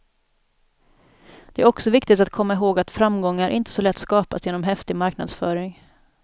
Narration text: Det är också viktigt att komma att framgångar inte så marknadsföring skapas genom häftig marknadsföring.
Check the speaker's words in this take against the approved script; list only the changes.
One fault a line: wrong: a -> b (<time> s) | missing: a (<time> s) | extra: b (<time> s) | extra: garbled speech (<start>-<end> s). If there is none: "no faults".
extra: ihåg (2.5 s)
wrong: marknadsföring -> lätt (3.8 s)